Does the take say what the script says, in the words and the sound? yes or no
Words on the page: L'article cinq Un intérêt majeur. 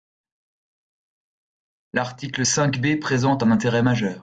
no